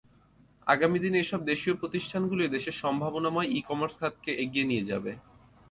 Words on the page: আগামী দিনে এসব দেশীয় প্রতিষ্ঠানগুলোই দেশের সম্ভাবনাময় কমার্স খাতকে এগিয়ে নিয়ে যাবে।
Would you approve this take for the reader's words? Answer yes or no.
no